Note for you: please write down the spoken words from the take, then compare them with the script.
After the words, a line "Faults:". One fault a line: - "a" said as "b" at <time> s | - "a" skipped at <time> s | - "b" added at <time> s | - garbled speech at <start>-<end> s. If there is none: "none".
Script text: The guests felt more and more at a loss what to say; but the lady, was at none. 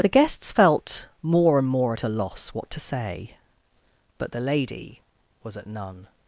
The guests felt more and more at a loss what to say; but the lady, was at none.
Faults:
none